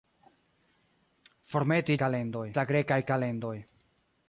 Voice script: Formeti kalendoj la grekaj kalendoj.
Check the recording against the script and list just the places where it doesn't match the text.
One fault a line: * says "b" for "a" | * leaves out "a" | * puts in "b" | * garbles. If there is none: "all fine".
all fine